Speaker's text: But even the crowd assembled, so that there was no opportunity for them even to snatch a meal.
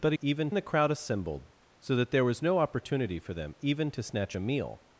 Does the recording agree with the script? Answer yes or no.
yes